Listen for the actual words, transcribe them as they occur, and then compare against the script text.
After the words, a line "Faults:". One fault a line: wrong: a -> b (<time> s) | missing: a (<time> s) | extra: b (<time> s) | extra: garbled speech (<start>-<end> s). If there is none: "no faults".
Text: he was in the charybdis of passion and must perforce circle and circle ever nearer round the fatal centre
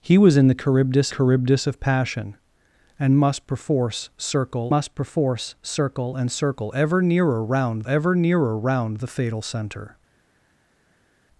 he was in the charybdis charybdis of passion and must perforce circle must perforce circle and circle ever nearer round ever nearer round the fatal centre
Faults:
extra: charybdis (1.1 s)
extra: must perforce circle (4.7 s)
extra: ever nearer round (7.9 s)